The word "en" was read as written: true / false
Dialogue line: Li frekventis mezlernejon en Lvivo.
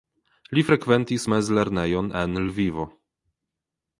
true